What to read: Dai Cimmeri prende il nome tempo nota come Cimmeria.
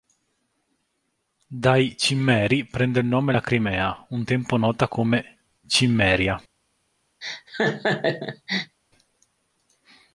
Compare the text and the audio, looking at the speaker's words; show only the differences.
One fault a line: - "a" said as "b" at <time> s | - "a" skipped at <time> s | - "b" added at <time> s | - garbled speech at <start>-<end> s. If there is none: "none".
- "la Crimea un" added at 3.3 s